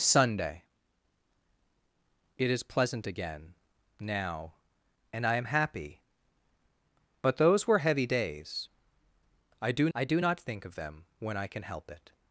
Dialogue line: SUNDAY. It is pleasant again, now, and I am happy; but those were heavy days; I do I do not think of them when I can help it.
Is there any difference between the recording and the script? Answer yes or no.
no